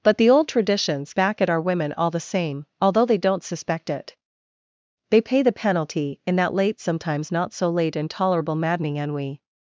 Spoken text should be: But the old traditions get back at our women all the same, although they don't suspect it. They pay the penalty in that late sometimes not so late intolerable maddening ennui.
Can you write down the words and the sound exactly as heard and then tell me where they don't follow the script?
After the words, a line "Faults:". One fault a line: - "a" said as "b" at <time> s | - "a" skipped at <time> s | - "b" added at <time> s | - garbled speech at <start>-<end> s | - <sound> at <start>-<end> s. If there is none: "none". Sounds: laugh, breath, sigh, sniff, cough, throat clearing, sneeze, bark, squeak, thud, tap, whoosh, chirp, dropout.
But the old traditions back at our women all the same, although they don't suspect it. They pay the penalty in that late sometimes not so late intolerable maddening ennui.
Faults:
- "get" skipped at 1.1 s